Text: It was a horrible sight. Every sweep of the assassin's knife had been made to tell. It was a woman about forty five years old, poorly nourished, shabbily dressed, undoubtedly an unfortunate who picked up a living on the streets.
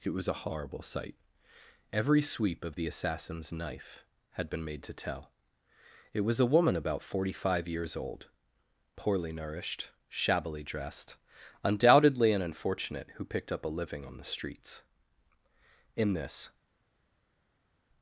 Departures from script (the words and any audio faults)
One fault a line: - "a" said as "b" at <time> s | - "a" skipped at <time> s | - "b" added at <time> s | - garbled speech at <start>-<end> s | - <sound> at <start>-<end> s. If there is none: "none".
- "In this" added at 16.0 s